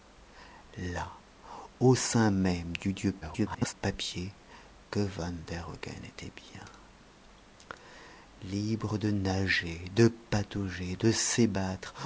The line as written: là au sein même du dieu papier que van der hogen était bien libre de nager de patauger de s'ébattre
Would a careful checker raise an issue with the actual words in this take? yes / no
yes